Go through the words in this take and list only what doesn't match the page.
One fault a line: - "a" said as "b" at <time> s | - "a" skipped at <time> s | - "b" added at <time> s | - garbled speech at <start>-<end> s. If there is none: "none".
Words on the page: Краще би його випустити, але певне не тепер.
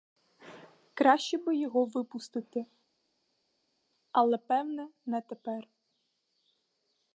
none